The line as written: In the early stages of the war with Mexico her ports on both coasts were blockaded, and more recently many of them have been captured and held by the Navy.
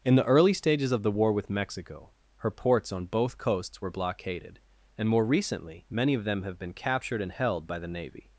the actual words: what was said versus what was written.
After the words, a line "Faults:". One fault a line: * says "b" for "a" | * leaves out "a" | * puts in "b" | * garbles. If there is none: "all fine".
In the early stages of the war with Mexico her ports on both coasts were blockaded, and more recently many of them have been captured and held by the Navy.
Faults:
all fine